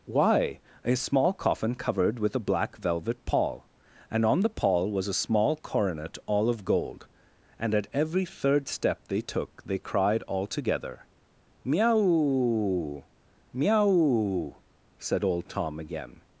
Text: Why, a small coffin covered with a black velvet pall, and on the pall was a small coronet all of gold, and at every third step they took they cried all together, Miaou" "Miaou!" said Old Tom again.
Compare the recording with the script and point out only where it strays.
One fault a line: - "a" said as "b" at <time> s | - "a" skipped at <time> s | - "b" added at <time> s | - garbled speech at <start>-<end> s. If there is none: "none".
none